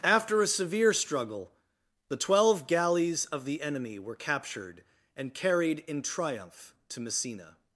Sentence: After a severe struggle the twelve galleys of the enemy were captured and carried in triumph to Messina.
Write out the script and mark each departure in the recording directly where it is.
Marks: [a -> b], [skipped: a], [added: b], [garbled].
After a severe struggle the twelve galleys of the enemy were captured and carried in triumph to Messina.